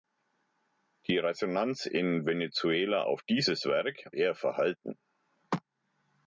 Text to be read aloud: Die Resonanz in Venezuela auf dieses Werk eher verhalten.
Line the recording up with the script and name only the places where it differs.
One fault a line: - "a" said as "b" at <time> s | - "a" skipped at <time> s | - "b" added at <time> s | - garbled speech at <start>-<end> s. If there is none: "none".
none